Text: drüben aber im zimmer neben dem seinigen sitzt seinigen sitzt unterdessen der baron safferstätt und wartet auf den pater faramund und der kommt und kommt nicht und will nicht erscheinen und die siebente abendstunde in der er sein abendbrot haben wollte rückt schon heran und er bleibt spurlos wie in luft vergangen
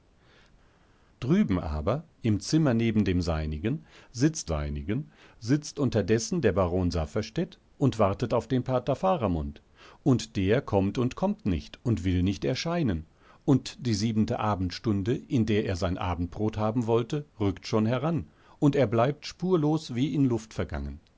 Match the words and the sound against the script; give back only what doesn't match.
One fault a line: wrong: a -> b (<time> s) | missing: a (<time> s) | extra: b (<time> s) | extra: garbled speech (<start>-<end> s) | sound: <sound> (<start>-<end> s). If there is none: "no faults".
no faults